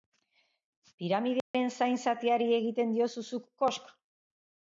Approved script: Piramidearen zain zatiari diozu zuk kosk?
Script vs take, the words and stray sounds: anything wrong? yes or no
yes